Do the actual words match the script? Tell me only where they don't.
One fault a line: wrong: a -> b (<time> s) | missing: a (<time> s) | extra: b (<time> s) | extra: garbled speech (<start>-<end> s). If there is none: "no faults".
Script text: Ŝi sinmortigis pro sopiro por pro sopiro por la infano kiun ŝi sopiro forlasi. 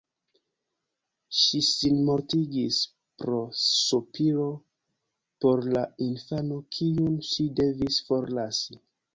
missing: pro sopiro por (5.6 s)
wrong: sopiro -> devis (7.6 s)